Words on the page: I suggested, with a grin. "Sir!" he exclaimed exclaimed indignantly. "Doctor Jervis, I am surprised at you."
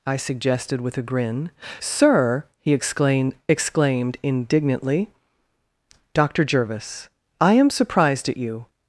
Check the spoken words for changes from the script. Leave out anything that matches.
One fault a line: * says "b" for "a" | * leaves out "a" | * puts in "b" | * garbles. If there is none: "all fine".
all fine